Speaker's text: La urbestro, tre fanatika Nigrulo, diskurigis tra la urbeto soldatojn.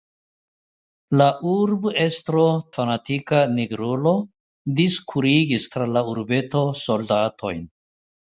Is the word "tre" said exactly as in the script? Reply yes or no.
no